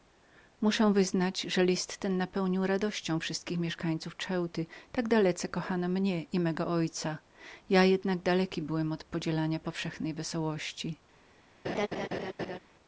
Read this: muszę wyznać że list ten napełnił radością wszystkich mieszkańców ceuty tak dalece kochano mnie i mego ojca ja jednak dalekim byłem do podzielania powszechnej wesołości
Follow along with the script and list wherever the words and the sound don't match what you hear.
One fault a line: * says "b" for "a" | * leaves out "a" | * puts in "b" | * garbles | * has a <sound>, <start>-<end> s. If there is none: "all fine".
* says "od" for "do"
* has a laugh, 11.6-12.6 s